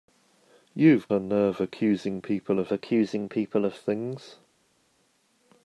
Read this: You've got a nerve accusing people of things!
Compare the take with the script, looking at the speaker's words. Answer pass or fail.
fail